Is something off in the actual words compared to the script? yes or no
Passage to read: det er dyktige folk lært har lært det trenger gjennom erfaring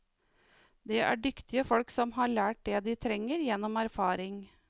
yes